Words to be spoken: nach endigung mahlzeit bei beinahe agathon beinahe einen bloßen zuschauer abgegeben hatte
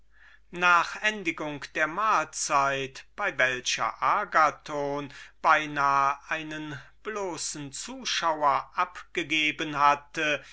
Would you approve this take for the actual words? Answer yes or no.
no